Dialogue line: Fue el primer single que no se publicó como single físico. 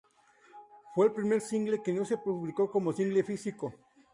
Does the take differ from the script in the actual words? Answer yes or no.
no